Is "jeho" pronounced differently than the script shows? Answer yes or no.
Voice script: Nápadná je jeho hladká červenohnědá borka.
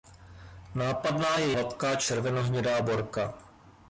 yes